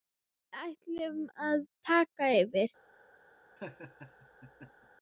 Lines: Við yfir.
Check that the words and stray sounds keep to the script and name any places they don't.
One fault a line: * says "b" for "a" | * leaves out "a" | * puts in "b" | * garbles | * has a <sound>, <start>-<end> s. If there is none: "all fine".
* puts in "ætlum að taka"
* has a laugh, 3.6-4.9 s